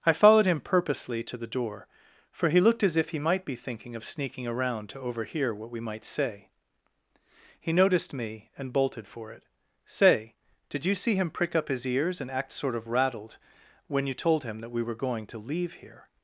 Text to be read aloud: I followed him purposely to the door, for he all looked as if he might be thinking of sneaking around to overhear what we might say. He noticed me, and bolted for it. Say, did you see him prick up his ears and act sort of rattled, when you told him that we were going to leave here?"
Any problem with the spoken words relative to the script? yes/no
yes